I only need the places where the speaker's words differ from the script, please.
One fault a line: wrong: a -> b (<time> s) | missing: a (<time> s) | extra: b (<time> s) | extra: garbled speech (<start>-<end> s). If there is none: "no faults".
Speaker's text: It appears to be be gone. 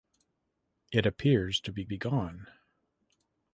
no faults